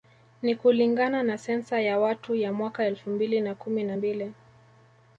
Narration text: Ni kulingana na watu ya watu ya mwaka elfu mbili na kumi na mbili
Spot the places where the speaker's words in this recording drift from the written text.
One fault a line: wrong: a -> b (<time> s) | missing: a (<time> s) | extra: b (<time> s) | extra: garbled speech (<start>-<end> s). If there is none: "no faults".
wrong: watu -> sensa (1.4 s)